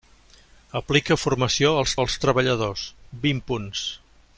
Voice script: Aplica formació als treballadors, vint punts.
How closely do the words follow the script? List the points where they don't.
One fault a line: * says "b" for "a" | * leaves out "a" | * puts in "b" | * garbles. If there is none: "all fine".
* puts in "als"